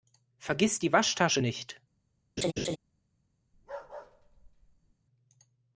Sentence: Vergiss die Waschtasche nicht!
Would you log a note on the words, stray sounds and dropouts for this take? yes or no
yes